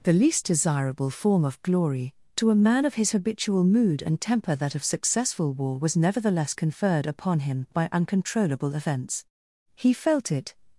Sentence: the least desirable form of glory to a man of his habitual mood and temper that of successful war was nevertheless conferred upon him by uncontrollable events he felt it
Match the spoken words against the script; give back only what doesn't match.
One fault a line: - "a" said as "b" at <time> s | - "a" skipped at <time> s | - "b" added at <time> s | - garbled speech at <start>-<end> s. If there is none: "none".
none